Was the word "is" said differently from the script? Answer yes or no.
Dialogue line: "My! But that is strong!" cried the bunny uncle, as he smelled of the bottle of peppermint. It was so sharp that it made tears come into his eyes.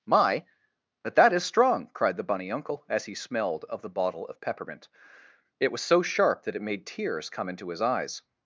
no